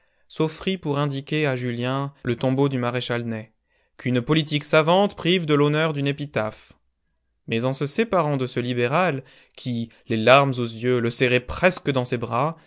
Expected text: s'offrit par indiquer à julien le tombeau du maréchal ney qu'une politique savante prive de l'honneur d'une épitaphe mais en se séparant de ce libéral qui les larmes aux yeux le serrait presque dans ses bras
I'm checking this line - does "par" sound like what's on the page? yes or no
no